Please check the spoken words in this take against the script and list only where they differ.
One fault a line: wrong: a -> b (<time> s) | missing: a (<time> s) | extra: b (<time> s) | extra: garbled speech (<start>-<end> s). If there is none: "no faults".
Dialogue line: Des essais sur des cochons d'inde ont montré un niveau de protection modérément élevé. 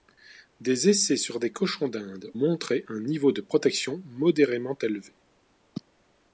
missing: ont (2.3 s)